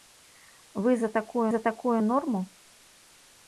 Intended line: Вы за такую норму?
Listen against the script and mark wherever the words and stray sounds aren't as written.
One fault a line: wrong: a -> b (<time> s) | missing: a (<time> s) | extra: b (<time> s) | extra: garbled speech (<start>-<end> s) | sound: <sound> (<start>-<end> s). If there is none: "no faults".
extra: за такую (1.5 s)